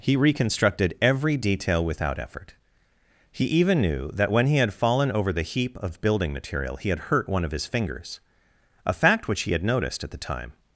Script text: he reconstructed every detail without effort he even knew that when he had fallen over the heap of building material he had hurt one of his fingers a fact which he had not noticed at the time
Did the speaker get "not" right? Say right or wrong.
wrong